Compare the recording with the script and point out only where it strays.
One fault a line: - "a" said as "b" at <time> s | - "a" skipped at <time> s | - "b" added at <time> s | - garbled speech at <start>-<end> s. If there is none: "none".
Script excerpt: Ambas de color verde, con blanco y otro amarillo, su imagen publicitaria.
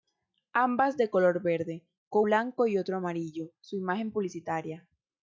none